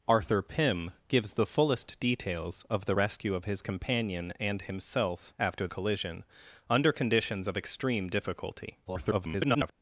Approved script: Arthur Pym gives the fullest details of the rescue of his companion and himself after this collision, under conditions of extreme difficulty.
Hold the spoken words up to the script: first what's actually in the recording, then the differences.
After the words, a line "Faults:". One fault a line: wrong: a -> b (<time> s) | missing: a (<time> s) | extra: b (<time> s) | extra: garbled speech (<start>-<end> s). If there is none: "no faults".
Arthur Pym gives the fullest details of the rescue of his companion and himself after collision, under conditions of extreme difficulty. [garbled]
Faults:
missing: this (5.7 s)
extra: garbled speech (8.8-9.7 s)